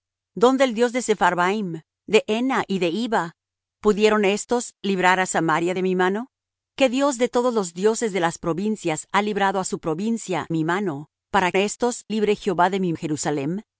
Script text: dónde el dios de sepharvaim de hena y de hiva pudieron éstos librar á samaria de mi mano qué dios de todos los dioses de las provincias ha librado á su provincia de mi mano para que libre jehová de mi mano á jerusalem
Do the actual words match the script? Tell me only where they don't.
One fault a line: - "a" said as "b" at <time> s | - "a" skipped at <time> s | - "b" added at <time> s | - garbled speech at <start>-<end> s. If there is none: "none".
- "de" skipped at 10.5 s
- "que" said as "éstos" at 11.6 s
- "mano" skipped at 12.9 s